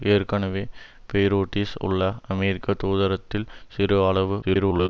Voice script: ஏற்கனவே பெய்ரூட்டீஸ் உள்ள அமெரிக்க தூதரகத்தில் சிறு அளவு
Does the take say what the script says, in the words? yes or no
no